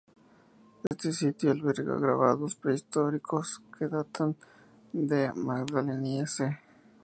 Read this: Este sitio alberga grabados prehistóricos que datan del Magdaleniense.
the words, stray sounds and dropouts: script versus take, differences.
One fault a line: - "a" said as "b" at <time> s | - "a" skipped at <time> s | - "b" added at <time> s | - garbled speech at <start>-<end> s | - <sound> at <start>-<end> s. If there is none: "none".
- dropout at 0.9-0.9 s